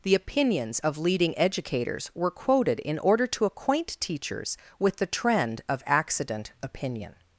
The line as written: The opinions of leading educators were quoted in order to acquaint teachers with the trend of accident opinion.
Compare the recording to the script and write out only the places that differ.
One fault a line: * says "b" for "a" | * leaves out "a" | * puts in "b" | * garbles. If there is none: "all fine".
all fine